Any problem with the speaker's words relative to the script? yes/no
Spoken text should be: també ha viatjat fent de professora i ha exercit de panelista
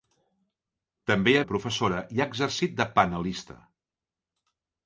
yes